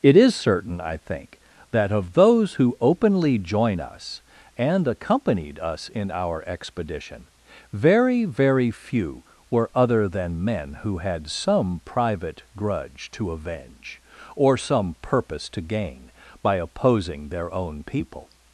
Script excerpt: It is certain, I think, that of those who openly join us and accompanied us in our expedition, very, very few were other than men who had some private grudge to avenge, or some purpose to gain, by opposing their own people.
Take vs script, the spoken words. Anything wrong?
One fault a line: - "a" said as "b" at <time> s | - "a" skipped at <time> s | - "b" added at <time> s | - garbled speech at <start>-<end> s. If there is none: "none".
none